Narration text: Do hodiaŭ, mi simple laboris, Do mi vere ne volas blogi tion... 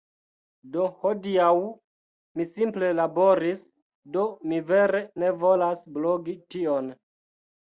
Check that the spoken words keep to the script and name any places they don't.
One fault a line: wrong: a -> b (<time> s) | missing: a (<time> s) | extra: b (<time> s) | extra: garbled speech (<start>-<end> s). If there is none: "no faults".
no faults